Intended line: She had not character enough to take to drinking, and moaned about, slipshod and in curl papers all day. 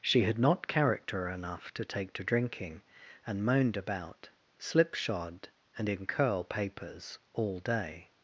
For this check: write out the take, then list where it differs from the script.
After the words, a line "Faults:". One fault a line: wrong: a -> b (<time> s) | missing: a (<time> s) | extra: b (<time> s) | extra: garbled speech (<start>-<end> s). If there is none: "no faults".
She had not character enough to take to drinking, and moaned about, slipshod and in curl papers all day.
Faults:
no faults